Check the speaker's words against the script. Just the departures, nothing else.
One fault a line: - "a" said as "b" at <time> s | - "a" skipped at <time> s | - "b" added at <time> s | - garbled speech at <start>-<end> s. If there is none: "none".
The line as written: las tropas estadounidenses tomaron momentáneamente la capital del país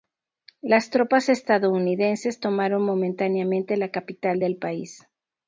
none